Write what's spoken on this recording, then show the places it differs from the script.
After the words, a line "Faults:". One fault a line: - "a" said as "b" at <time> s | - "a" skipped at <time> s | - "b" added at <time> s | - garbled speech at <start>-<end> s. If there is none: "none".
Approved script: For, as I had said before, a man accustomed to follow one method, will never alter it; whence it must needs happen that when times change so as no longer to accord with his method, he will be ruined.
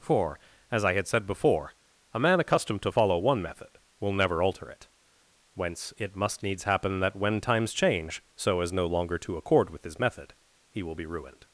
For, as I had said before, a man accustomed to follow one method, will never alter it; whence it must needs happen that when times change so as no longer to accord with his method, he will be ruined.
Faults:
none